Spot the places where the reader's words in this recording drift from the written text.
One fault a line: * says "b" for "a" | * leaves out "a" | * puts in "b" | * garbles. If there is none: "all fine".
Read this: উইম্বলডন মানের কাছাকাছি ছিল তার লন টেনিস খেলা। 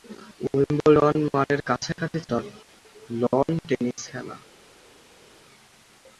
* leaves out "ছিল"